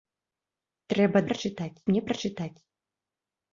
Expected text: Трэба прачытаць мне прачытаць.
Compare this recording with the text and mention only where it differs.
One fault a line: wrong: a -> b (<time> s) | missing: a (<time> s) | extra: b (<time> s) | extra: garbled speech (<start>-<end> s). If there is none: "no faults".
no faults